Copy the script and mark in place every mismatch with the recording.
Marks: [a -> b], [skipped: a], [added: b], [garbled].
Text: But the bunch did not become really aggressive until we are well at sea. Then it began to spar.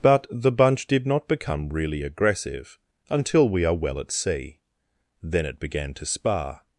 But the bunch did not become really aggressive until we are well at sea. Then it began to spar.